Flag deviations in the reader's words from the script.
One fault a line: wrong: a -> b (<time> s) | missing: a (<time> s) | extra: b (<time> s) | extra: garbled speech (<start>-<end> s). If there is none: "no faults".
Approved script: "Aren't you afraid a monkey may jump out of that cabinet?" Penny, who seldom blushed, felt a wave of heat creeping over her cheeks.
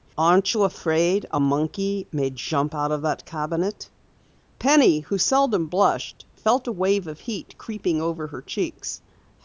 no faults